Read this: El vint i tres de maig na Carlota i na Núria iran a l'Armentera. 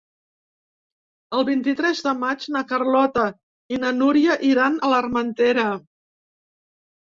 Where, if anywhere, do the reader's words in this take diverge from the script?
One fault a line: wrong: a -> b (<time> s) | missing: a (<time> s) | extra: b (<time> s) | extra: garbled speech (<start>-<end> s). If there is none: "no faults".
no faults